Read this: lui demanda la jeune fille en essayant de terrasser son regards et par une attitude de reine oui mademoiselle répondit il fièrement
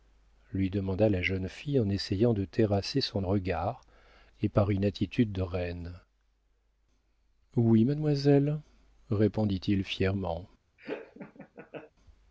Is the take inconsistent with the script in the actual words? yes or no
no